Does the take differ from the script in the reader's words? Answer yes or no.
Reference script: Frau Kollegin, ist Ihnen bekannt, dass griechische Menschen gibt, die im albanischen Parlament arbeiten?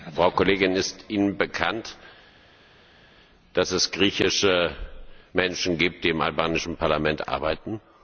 yes